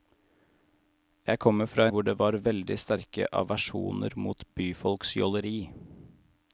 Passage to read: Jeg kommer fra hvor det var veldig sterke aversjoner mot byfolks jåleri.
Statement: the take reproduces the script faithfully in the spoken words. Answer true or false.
true